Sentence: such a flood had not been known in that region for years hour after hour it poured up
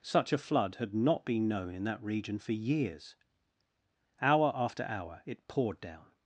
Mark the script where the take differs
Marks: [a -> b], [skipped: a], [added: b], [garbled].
such a flood had not been known in that region for years hour after hour it poured [up -> down]